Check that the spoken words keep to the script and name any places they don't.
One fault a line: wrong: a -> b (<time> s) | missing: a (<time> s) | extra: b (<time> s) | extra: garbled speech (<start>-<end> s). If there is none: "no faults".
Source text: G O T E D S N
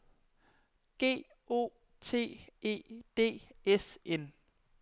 no faults